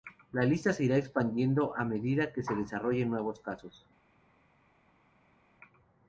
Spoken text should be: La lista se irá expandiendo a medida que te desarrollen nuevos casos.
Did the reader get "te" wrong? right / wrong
wrong